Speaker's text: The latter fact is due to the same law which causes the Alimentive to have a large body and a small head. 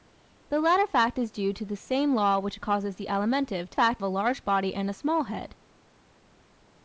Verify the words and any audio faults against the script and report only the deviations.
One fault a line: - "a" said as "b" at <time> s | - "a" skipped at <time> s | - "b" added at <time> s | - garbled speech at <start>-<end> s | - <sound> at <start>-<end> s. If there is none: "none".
- "have" said as "fact" at 3.7 s